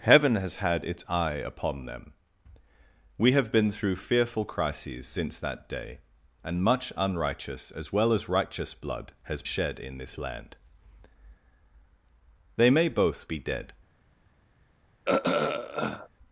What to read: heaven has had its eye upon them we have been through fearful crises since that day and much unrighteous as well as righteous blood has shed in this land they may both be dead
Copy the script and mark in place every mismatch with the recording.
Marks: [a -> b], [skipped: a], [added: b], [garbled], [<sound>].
heaven has had its eye upon them we have been through fearful crises since that day and much unrighteous as well as righteous blood has shed in this land they may both be dead [throat clearing]